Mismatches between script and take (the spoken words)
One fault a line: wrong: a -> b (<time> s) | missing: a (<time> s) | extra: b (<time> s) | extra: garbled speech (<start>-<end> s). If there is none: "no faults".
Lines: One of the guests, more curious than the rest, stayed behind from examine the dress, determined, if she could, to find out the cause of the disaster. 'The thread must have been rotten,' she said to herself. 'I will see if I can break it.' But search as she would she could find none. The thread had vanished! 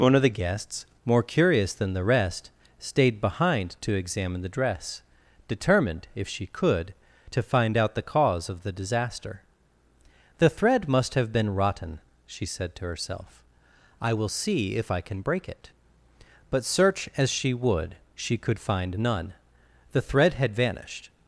wrong: from -> to (3.8 s)